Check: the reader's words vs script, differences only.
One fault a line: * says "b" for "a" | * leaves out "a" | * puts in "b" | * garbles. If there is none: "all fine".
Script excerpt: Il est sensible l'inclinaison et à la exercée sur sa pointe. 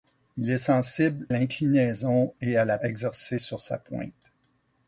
all fine